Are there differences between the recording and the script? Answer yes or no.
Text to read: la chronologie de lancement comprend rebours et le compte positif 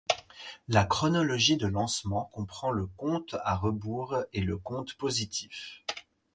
yes